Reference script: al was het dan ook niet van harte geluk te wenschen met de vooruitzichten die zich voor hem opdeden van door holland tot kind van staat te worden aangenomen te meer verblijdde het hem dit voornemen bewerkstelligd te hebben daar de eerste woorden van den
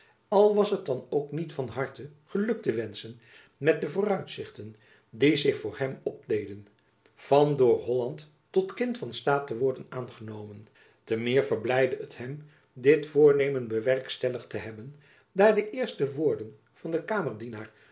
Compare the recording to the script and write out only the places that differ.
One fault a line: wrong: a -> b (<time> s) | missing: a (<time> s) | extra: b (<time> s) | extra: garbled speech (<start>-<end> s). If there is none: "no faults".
no faults